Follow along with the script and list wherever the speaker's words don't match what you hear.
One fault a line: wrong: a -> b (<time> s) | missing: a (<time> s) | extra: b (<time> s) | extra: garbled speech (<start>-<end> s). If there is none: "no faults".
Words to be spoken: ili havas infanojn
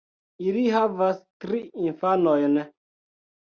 extra: tri (1.4 s)